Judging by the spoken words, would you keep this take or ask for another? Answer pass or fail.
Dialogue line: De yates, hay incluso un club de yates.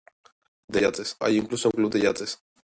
pass